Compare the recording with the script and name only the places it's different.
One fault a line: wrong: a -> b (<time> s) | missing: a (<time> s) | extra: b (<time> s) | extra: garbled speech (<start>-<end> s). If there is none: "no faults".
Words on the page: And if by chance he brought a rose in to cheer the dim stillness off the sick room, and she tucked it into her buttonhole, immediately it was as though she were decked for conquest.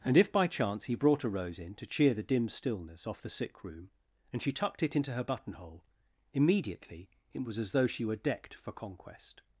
no faults